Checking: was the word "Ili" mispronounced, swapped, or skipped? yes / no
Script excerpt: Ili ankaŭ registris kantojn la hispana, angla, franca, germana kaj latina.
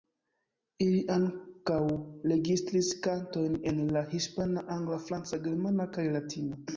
no